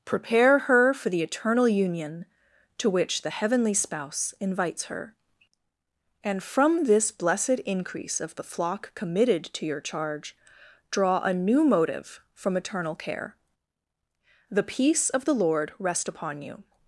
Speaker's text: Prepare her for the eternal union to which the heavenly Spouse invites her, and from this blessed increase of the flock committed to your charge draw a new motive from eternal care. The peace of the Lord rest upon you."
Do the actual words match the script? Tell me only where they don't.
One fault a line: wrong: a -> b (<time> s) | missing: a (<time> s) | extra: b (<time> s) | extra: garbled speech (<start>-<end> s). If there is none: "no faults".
no faults